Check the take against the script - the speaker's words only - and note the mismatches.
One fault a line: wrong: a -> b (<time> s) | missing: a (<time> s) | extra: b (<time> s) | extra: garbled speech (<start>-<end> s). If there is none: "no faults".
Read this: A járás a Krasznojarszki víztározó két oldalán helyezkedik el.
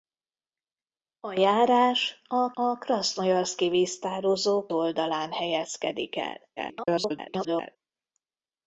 extra: a (2.5 s)
missing: két (4.7 s)
extra: garbled speech (6.6-7.8 s)